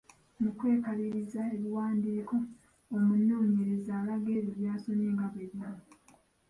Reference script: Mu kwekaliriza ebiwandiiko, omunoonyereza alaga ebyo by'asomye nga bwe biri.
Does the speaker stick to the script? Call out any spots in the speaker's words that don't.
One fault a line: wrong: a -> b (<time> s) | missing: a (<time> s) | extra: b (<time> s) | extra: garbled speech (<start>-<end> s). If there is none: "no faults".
no faults